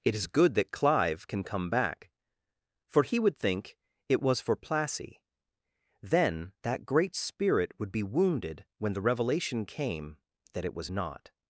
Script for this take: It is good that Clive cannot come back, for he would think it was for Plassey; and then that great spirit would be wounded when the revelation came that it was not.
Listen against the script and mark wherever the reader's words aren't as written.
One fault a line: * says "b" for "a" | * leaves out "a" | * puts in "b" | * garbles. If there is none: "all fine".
* says "can" for "cannot"
* leaves out "and"